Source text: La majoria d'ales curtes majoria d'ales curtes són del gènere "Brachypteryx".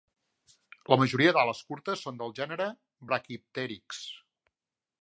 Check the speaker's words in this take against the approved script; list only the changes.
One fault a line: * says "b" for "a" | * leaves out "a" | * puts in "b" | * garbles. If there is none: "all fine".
* leaves out "majoria d'ales curtes"